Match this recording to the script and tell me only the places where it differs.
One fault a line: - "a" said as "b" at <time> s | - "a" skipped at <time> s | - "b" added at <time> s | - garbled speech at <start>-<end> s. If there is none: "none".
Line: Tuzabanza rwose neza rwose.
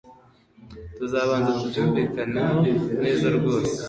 - "rwose" said as "tubyumvikaneho" at 1.6 s